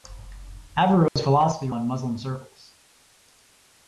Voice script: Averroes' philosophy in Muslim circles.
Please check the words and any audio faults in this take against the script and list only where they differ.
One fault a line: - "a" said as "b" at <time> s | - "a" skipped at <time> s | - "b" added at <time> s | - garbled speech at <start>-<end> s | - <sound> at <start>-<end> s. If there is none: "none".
- dropout at 1.1-1.2 s